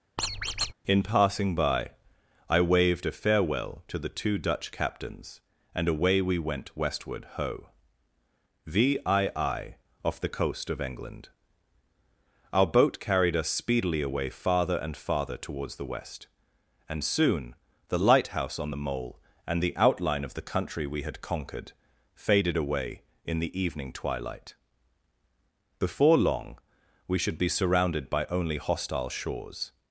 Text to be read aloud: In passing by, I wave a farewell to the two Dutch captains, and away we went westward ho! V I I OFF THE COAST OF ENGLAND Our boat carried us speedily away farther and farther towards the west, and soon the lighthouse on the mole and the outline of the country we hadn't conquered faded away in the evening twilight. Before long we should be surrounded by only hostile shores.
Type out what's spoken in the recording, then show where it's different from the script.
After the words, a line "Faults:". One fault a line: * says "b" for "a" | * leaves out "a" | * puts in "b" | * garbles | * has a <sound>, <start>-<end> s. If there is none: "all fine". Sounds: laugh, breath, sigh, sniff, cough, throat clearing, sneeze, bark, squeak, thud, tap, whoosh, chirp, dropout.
In passing by, I waved a farewell to the two Dutch captains, and away we went westward ho! V I I OFF THE COAST OF ENGLAND Our boat carried us speedily away farther and farther towards the west, and soon the lighthouse on the mole and the outline of the country we had conquered faded away in the evening twilight. Before long we should be surrounded by only hostile shores.
Faults:
* has a squeak, 0.2-0.7 s
* says "waved" for "wave"
* says "had" for "hadn't"